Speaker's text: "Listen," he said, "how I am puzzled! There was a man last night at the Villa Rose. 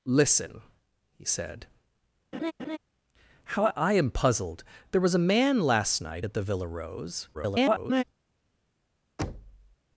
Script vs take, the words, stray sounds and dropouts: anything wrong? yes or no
yes